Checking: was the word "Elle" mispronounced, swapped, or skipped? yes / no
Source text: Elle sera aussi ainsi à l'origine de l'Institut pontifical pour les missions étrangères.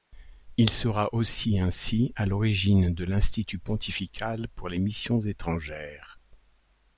yes